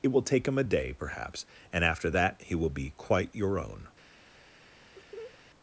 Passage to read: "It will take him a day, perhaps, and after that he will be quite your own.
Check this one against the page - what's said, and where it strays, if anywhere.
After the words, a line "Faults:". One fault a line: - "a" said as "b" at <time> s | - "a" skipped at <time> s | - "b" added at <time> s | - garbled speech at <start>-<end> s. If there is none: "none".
"It will take him a day, perhaps, and after that he will be quite your own.
Faults:
none